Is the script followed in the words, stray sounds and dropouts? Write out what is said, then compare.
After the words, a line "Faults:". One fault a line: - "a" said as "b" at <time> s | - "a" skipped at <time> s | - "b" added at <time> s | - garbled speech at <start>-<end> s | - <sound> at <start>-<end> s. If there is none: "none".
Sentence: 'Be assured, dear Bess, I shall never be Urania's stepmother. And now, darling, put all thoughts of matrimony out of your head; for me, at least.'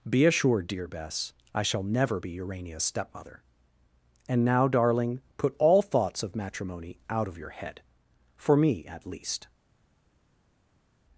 'Be assured, dear Bess, I shall never be Urania's stepmother. And now, darling, put all thoughts of matrimony out of your head; for me, at least.'
Faults:
none